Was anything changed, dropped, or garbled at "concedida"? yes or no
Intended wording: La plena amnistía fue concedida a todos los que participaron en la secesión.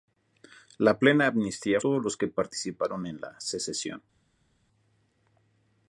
yes